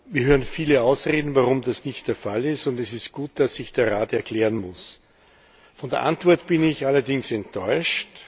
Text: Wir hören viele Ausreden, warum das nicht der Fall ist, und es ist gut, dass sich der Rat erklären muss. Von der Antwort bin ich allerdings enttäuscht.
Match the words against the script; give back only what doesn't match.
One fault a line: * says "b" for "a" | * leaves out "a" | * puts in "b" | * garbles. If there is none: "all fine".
all fine